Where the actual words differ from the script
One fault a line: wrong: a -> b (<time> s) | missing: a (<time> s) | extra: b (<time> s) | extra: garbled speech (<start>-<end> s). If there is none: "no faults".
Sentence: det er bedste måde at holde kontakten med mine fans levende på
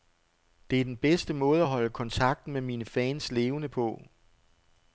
extra: den (0.8 s)